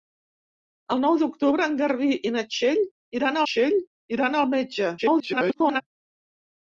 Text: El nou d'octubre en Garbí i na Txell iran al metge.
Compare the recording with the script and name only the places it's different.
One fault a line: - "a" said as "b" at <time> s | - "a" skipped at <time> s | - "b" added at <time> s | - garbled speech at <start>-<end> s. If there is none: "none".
- "Txell iran" added at 3.5 s
- garbled speech at 5.0-5.8 s